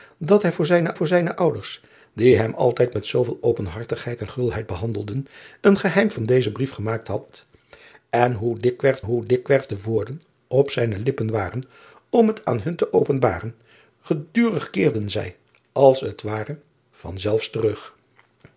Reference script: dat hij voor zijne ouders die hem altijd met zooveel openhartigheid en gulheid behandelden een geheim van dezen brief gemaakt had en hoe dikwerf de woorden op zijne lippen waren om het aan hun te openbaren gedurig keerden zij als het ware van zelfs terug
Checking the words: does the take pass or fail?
fail